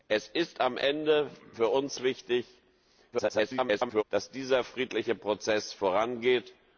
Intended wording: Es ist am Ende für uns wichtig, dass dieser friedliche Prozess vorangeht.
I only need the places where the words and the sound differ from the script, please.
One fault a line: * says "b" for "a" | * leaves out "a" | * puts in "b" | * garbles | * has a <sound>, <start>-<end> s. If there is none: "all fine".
* garbles